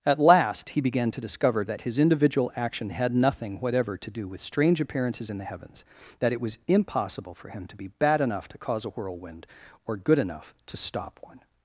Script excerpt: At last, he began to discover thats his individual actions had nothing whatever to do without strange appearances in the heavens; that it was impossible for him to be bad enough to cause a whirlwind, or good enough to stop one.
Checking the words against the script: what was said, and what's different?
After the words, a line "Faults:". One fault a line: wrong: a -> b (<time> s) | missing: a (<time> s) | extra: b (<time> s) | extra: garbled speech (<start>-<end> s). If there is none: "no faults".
At last, he began to discover that his individual action had nothing whatever to do with strange appearances in the heavens; that it was impossible for him to be bad enough to cause a whirlwind, or good enough to stop one.
Faults:
wrong: thats -> that (1.7 s)
wrong: actions -> action (2.6 s)
wrong: without -> with (4.3 s)